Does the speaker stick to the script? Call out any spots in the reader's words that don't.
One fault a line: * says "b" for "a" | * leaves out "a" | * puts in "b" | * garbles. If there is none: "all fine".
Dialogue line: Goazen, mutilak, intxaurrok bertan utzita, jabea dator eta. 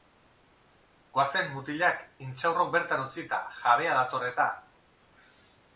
all fine